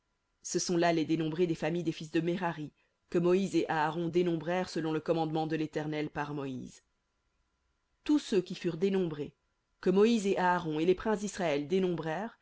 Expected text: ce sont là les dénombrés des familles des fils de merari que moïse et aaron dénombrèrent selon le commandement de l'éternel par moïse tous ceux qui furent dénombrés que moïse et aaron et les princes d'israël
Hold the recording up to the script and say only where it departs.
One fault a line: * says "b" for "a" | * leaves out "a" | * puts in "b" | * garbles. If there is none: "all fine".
all fine